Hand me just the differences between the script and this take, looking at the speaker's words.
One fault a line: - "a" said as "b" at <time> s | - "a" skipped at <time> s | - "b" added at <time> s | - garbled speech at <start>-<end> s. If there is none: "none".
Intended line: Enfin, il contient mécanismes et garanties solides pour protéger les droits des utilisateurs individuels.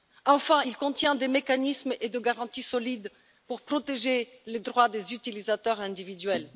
- "des" added at 1.1 s
- "des" added at 2.1 s